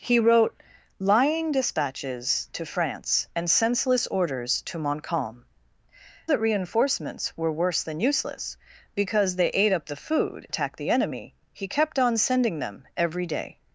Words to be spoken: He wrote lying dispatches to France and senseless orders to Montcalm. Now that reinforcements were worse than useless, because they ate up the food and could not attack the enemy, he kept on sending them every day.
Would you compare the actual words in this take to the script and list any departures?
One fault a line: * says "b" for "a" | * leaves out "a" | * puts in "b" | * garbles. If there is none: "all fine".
* leaves out "Now"
* leaves out "and could not"